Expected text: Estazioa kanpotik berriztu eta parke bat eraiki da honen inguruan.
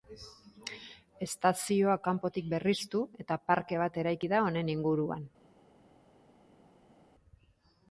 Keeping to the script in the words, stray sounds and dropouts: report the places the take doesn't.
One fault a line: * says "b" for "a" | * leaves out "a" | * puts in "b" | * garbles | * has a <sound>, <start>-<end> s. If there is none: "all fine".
all fine